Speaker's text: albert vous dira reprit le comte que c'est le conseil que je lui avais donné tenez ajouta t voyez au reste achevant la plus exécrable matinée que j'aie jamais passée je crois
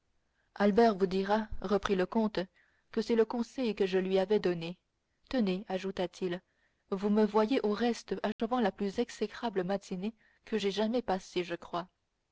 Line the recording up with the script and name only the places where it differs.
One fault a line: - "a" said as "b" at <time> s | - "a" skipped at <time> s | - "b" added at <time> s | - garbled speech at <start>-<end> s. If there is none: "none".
- "il vous me" added at 6.2 s